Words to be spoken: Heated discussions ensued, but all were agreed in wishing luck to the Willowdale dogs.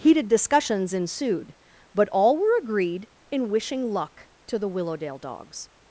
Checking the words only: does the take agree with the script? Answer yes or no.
yes